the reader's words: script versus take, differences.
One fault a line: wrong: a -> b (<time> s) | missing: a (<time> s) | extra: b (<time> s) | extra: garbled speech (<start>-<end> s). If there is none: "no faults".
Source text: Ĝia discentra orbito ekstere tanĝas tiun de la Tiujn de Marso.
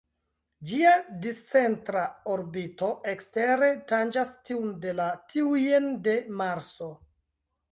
no faults